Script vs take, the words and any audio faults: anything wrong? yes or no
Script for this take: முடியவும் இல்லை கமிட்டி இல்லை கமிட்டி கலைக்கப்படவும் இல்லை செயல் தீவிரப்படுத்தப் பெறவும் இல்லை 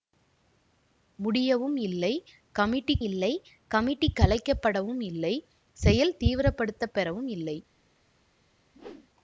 yes